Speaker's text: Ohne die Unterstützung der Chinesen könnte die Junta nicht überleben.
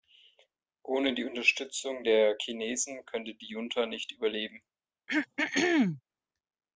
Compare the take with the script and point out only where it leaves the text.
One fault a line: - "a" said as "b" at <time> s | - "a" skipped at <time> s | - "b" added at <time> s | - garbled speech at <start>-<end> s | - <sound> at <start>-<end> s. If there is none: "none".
- throat clearing at 5.1-6.0 s